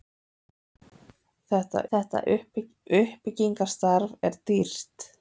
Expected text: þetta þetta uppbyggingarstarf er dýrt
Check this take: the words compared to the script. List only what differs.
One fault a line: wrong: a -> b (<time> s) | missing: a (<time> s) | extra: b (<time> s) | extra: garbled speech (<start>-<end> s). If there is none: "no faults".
no faults